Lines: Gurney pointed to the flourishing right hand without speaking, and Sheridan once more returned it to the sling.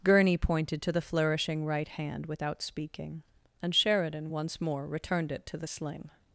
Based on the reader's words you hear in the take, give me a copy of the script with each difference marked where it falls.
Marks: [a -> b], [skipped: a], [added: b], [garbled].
Gurney pointed to the flourishing right hand without speaking, and Sheridan once more returned it to the sling.